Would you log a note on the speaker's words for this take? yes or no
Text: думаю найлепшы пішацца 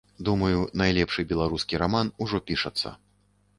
yes